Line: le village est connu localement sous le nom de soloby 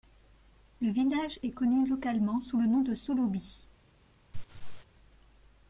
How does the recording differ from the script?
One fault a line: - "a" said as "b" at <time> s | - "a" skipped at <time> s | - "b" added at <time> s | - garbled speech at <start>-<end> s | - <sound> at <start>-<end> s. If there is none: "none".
- laugh at 4.3-4.9 s